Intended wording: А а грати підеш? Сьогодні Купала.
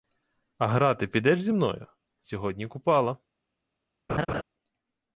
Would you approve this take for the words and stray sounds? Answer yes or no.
no